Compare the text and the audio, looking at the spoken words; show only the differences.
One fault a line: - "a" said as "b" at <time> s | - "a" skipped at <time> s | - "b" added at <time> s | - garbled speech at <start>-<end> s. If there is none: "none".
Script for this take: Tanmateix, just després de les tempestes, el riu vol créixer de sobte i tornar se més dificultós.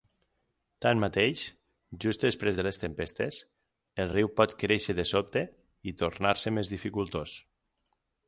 - "vol" said as "pot" at 4.4 s